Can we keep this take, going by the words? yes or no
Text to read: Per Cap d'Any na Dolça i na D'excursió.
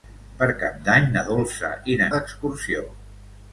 yes